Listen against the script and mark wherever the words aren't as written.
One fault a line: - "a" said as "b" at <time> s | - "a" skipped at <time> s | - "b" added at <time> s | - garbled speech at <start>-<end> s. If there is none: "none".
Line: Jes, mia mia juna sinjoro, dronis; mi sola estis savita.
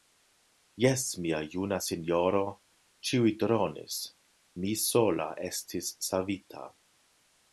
- "mia" skipped at 1.4 s
- "ĉiuj" added at 3.1 s